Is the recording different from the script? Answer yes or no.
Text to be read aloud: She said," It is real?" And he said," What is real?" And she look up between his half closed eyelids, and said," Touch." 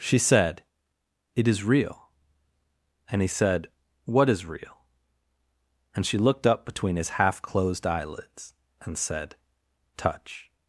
yes